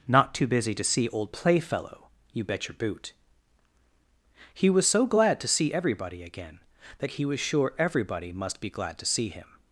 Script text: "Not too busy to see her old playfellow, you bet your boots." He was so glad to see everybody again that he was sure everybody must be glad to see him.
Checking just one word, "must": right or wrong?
right